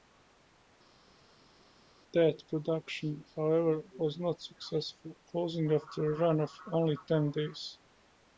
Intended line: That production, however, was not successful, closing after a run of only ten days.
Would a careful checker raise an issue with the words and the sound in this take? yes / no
no